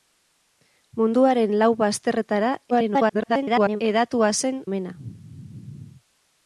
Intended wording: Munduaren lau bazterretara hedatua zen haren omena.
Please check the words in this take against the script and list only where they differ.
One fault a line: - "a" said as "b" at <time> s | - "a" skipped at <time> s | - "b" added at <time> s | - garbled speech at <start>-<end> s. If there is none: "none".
- garbled speech at 2.7-3.8 s
- "haren" skipped at 4.6 s